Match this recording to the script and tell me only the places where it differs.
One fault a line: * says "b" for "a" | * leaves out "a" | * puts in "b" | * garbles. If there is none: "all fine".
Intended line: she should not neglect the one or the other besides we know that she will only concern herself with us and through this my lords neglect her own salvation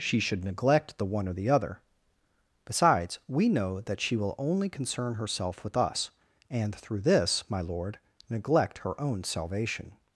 * leaves out "not"
* says "lord" for "lords"